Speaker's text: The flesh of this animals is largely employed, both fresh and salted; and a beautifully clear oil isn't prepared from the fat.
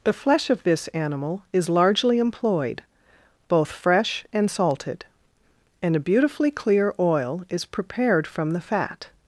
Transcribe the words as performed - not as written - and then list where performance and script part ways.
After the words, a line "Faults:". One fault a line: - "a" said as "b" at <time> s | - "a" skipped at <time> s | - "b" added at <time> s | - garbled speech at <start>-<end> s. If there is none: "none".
The flesh of this animal is largely employed, both fresh and salted; and a beautifully clear oil is prepared from the fat.
Faults:
- "animals" said as "animal" at 0.9 s
- "isn't" said as "is" at 7.5 s